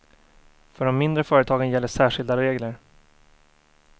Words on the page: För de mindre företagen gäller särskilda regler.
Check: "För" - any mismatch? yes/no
no